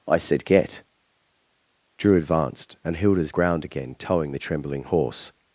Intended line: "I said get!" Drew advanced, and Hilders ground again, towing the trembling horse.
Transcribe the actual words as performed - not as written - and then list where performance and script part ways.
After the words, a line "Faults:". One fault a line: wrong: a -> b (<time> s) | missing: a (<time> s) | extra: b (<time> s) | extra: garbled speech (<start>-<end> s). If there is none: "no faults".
"I said get!" Drew advanced, and Hilders ground again, towing the trembling horse.
Faults:
no faults